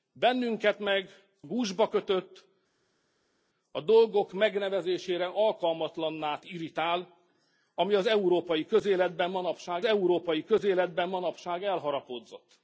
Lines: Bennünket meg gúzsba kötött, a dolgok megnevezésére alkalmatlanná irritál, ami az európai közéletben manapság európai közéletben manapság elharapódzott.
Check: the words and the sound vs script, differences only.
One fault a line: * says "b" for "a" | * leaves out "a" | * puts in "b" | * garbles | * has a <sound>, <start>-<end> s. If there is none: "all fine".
all fine